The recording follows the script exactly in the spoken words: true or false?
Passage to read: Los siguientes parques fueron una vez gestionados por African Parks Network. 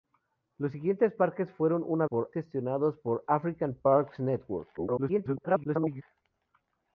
false